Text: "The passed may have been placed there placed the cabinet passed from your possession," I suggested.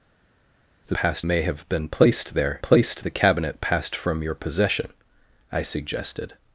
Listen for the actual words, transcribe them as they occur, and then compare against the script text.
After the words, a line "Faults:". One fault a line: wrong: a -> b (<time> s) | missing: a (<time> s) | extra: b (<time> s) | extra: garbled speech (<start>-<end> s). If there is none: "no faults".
"The passed may have been placed there placed the cabinet passed from your possession," I suggested.
Faults:
no faults